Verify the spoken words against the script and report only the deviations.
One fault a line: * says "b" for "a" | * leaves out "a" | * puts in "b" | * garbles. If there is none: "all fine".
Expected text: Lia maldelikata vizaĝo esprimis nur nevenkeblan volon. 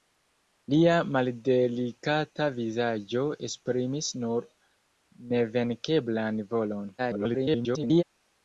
* garbles